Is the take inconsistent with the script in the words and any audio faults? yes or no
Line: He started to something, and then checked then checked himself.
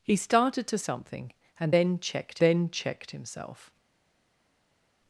no